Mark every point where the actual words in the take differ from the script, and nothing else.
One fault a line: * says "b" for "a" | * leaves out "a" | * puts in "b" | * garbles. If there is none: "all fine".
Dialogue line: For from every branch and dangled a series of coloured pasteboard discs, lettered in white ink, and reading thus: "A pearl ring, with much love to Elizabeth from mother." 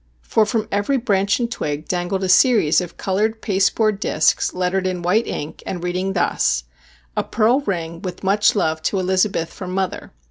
* puts in "twig"